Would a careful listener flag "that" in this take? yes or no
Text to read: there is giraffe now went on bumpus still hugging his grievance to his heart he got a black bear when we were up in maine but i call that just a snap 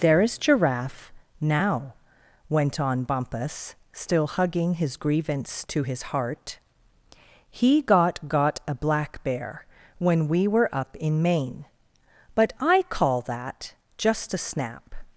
no